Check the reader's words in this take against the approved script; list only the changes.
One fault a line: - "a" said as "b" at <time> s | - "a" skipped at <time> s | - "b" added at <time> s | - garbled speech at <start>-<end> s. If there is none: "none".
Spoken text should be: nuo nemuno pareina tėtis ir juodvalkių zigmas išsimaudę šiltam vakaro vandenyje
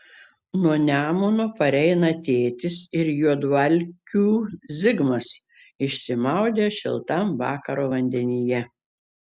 none